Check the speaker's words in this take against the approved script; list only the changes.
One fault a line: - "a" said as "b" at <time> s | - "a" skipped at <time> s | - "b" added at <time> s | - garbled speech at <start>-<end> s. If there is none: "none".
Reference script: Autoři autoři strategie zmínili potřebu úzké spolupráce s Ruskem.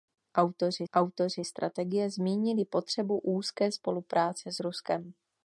none